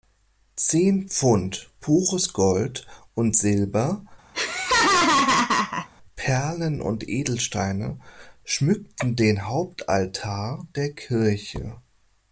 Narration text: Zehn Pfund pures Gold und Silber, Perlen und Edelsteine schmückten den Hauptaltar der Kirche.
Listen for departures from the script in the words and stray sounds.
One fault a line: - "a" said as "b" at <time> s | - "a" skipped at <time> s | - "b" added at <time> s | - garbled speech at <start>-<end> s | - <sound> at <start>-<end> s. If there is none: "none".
- laugh at 4.3-5.9 s